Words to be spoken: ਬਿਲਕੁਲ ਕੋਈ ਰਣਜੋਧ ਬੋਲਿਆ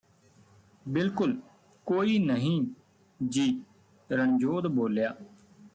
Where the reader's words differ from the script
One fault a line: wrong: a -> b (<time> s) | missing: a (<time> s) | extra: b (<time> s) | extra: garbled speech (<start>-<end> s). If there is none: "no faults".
extra: ਨਹੀਂ ਜੀ (2.2 s)